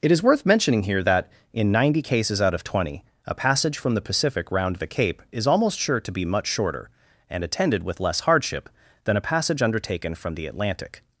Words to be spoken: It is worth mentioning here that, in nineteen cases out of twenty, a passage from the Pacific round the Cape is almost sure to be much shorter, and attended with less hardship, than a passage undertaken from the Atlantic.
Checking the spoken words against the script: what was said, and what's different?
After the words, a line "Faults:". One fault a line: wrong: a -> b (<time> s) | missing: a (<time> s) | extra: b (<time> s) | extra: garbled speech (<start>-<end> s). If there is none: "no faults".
It is worth mentioning here that, in ninety cases out of twenty, a passage from the Pacific round the Cape is almost sure to be much shorter, and attended with less hardship, than a passage undertaken from the Atlantic.
Faults:
wrong: nineteen -> ninety (1.7 s)